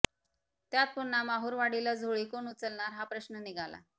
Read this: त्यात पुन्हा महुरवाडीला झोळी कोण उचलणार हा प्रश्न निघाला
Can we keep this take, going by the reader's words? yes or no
yes